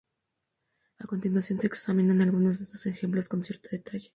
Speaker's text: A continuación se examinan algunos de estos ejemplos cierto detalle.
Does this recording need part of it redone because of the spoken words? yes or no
yes